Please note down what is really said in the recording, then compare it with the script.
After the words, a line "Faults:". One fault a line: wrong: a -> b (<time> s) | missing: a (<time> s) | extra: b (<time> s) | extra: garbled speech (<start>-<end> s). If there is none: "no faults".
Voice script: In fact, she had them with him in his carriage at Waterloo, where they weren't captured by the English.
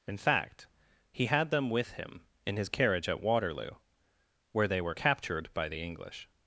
In fact, he had them with him in his carriage at Waterloo, where they were captured by the English.
Faults:
wrong: she -> he (1.1 s)
wrong: weren't -> were (4.8 s)